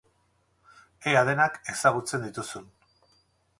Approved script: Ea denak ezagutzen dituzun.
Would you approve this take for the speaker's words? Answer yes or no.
yes